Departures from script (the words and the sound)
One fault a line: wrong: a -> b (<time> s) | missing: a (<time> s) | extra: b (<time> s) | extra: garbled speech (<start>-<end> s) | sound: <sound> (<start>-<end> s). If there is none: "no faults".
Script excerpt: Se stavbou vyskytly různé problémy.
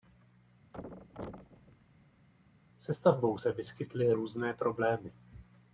sound: thud (0.7-2.3 s)
extra: se (3.4 s)